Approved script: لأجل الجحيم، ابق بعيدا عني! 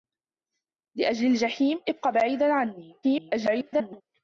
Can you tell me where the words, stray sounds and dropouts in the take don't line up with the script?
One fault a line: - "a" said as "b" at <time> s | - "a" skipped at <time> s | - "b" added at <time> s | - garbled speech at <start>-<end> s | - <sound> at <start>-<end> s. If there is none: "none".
- garbled speech at 3.0-4.0 s